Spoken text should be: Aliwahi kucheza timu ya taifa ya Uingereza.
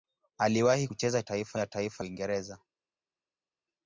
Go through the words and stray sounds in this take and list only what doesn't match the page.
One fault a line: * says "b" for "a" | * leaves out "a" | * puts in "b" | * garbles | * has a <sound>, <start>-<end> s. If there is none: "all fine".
* says "taifa" for "timu"
* leaves out "ya"